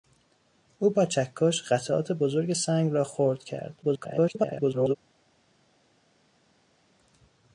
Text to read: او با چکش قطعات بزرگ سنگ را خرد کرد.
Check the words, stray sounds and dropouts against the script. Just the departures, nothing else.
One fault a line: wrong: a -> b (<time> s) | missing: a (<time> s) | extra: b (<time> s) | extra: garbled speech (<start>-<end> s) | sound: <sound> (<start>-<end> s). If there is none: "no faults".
extra: garbled speech (3.8-5.0 s)